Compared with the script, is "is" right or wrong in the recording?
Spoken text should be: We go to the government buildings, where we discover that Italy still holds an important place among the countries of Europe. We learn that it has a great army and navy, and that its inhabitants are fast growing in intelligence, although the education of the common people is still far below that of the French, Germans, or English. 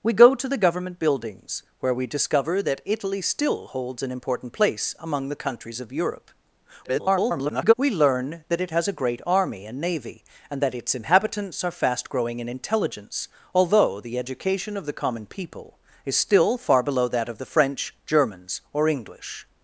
right